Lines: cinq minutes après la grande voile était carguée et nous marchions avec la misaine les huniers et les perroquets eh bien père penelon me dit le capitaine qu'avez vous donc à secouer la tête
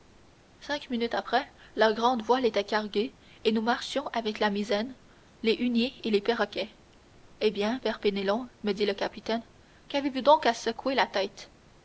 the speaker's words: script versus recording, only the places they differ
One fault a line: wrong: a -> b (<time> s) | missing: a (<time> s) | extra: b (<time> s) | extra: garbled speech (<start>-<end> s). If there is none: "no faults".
no faults